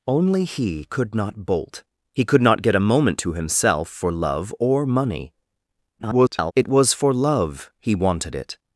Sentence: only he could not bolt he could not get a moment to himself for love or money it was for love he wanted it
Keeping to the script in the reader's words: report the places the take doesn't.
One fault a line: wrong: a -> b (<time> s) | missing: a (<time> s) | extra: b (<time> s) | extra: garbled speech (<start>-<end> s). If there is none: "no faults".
extra: garbled speech (6.0-6.5 s)